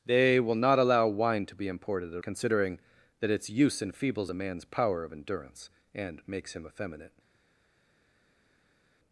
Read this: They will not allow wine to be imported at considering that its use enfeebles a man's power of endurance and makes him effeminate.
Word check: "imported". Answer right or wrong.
right